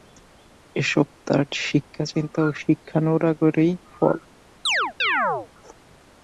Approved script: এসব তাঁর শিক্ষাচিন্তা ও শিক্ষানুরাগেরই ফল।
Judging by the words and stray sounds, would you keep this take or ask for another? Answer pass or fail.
fail